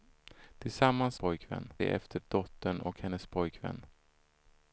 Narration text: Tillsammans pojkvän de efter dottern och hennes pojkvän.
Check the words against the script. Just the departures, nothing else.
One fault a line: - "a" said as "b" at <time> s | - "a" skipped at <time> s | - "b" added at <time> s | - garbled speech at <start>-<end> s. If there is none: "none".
none